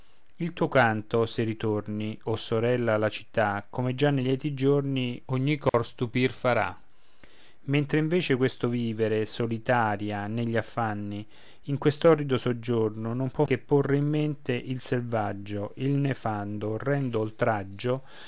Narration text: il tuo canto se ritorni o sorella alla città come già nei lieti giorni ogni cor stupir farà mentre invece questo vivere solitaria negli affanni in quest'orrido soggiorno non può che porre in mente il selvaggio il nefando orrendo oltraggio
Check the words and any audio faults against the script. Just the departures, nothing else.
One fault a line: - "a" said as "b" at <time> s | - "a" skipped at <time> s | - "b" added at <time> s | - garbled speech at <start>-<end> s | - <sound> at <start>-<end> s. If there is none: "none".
- dropout at 5.7-5.7 s